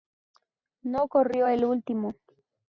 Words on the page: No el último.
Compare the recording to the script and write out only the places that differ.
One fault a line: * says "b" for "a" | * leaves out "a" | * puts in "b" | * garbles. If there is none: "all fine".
* puts in "corrió"